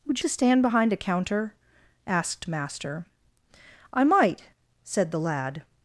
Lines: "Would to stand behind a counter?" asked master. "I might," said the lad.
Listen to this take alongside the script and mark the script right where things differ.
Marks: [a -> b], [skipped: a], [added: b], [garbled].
"Would to stand behind a counter?" asked master. "I might," said the lad.